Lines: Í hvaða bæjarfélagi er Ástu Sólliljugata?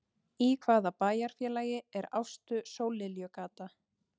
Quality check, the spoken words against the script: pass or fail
pass